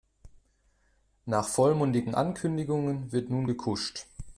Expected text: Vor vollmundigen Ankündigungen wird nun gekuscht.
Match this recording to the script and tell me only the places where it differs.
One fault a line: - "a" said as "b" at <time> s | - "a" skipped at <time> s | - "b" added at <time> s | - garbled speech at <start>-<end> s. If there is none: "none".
- "Vor" said as "Nach" at 1.2 s